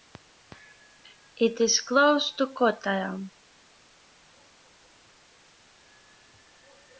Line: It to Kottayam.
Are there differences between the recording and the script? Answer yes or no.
yes